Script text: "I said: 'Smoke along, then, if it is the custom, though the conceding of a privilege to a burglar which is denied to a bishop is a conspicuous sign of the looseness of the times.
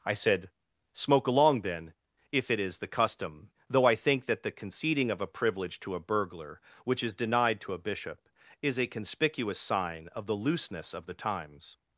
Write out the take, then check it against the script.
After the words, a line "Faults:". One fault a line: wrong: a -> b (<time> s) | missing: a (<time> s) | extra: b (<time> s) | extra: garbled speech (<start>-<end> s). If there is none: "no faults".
"I said: 'Smoke along, then, if it is the custom, though I think that the conceding of a privilege to a burglar which is denied to a bishop is a conspicuous sign of the looseness of the times.
Faults:
extra: I think that (3.8 s)